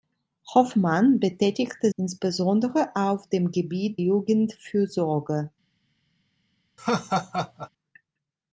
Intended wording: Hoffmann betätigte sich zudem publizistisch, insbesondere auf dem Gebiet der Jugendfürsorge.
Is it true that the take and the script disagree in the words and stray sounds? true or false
true